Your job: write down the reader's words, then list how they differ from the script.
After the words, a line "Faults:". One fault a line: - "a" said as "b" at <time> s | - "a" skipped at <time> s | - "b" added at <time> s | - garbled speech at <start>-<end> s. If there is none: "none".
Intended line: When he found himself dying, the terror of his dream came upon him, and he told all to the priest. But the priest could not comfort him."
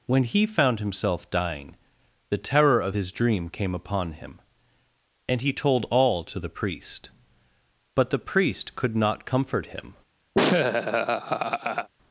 When he found himself dying, the terror of his dream came upon him, and he told all to the priest. But the priest could not comfort him."
Faults:
none